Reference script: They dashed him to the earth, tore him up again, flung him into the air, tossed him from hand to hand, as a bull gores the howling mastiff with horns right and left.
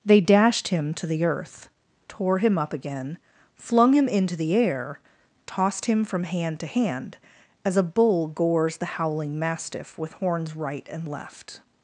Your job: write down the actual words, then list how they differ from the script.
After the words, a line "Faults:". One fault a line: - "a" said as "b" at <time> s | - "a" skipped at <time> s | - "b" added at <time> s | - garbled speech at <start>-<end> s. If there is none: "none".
They dashed him to the earth, tore him up again, flung him into the air, tossed him from hand to hand, as a bull gores the howling mastiff with horns right and left.
Faults:
none